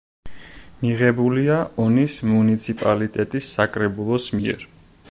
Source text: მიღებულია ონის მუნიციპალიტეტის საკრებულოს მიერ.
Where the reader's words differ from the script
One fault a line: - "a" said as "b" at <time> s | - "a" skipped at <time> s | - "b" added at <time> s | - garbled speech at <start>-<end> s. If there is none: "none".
none